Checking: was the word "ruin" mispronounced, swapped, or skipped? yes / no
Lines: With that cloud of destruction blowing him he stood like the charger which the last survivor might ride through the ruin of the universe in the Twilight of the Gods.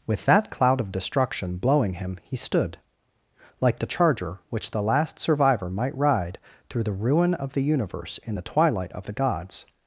no